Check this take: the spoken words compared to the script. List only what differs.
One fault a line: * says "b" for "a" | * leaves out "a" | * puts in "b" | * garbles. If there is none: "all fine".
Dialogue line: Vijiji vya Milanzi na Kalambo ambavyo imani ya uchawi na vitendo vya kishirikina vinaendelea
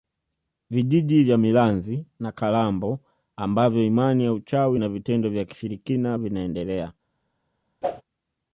all fine